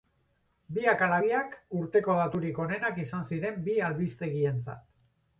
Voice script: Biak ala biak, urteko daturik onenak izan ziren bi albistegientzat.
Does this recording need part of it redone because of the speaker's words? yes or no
no